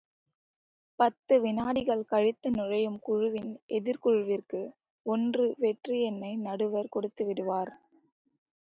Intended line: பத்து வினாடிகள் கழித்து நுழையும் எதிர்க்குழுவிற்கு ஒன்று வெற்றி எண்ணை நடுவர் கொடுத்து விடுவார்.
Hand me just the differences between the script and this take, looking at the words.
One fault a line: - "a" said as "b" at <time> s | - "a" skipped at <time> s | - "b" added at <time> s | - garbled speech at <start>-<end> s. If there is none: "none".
- "குழுவின்" added at 3.0 s